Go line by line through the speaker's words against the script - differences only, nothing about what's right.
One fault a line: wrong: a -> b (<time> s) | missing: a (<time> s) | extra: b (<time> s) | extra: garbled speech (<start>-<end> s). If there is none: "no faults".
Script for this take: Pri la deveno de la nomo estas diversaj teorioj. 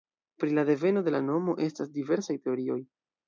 no faults